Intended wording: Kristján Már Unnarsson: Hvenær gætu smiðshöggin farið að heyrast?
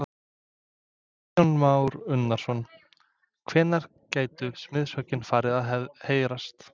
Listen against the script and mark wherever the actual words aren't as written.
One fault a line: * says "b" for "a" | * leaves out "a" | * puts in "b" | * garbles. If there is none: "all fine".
all fine